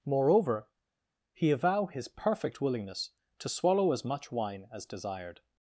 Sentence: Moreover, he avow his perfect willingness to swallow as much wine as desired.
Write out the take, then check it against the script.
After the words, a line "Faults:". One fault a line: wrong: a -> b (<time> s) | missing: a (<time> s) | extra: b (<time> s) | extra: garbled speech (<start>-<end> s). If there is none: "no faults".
Moreover, he avow his perfect willingness to swallow as much wine as desired.
Faults:
no faults